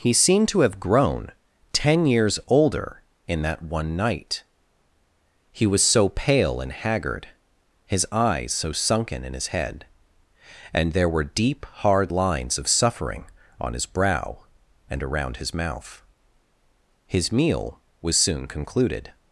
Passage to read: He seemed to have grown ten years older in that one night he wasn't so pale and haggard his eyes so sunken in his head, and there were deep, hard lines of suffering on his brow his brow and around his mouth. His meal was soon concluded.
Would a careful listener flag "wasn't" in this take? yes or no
yes